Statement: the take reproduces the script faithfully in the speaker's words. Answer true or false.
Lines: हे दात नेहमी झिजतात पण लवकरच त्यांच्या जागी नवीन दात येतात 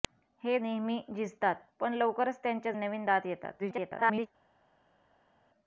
false